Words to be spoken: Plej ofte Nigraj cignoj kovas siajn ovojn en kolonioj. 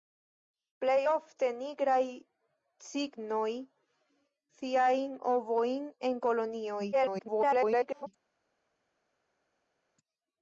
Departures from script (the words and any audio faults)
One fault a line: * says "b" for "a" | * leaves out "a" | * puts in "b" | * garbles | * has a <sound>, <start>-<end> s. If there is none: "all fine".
* leaves out "kovas"
* garbles